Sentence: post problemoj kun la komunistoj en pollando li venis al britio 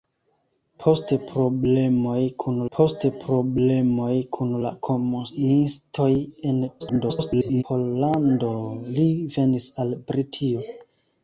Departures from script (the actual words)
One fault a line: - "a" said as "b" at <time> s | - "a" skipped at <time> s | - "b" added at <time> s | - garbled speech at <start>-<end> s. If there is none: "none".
- "post problemoj kun" added at 2.8 s
- garbled speech at 6.8-7.6 s